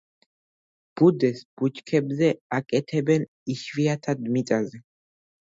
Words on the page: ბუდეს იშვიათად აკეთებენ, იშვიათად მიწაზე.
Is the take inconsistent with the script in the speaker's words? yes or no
yes